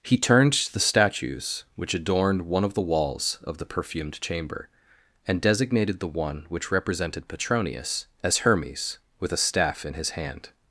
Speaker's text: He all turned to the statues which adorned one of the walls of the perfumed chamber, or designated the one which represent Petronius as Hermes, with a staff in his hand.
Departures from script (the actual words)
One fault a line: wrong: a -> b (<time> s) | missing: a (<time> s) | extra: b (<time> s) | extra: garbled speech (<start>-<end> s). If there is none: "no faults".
missing: all (0.2 s)
wrong: or -> and (5.3 s)
wrong: represent -> represented (6.7 s)